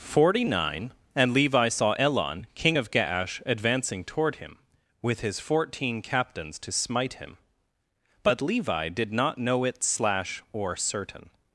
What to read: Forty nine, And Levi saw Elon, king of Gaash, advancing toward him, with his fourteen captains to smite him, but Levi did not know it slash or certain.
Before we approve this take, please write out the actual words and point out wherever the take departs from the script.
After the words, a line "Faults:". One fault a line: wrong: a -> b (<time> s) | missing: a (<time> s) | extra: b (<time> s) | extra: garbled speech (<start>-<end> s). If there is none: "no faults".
Forty nine, And Levi saw Elon, king of Gaash, advancing toward him, with his fourteen captains to smite him, but Levi did not know it slash or certain.
Faults:
no faults